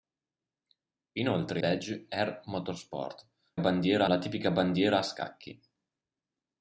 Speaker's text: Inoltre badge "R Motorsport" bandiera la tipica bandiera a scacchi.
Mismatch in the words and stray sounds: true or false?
false